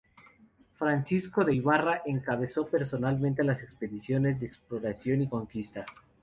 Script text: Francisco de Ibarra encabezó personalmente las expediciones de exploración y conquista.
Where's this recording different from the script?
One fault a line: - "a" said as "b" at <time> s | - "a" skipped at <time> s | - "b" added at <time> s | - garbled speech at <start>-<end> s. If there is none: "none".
none